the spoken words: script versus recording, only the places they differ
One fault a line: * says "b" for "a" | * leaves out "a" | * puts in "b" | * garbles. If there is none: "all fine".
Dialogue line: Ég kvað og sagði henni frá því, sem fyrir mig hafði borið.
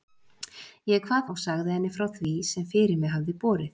all fine